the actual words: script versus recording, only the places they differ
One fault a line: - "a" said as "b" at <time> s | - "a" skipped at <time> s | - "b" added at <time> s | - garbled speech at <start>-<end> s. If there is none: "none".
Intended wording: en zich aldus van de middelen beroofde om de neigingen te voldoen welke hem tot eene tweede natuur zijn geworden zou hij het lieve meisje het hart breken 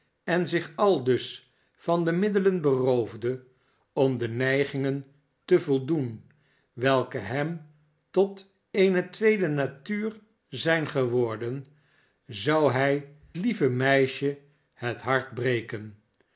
- "het" skipped at 13.2 s